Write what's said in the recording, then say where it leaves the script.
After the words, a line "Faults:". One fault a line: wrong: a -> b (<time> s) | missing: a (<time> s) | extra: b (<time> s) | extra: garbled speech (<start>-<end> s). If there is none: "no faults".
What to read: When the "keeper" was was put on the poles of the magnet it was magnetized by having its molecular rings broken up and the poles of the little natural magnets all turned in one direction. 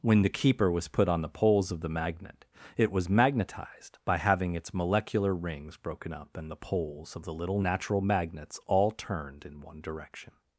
When the "keeper" was put on the poles of the magnet it was magnetized by having its molecular rings broken up and the poles of the little natural magnets all turned in one direction.
Faults:
missing: was (0.9 s)